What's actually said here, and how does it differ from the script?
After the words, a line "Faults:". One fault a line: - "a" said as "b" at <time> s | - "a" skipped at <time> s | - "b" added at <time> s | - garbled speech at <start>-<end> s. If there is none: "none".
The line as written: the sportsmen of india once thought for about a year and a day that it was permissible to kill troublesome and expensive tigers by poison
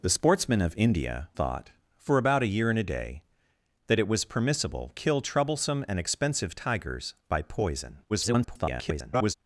the sportsmen of india thought for about a year and a day that it was permissible kill troublesome and expensive tigers by poison [garbled]
Faults:
- "once" skipped at 1.3 s
- "to" skipped at 4.9 s
- garbled speech at 8.1-9.3 s